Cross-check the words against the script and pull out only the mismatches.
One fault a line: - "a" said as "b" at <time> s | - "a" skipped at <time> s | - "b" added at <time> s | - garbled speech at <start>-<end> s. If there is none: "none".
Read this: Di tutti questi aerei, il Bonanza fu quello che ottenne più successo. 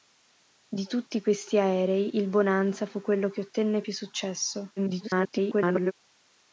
- garbled speech at 4.8-5.9 s